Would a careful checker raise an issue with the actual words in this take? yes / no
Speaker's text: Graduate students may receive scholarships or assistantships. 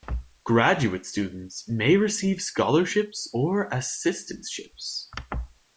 no